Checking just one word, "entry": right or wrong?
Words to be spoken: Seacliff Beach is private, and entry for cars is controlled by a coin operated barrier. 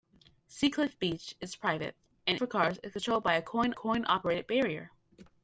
wrong